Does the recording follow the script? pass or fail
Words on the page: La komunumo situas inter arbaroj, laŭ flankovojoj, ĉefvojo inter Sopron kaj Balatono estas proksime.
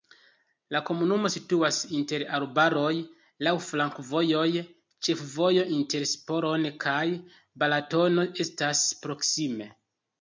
pass